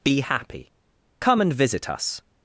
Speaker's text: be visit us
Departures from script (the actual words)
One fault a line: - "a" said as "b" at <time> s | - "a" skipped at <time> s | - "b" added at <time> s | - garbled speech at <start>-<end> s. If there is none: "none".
- "happy come and" added at 0.2 s